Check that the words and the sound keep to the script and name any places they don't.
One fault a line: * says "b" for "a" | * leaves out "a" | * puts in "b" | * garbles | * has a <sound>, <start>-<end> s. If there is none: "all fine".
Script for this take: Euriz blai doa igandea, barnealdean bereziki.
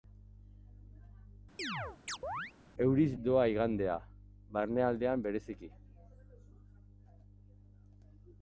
* has a chirp, 1.6-2.5 s
* leaves out "blai"